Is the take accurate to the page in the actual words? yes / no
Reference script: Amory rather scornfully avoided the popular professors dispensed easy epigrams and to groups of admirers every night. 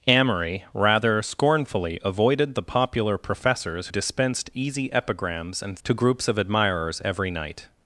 yes